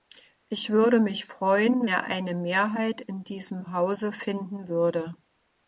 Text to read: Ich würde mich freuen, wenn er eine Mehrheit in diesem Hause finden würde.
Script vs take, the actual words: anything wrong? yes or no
yes